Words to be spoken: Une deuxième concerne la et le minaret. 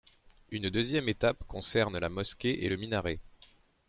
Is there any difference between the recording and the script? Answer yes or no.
yes